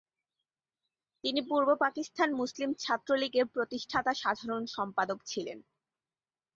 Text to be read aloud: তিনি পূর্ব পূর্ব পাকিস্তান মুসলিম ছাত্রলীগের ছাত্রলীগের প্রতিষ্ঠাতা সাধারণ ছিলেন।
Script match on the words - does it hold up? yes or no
no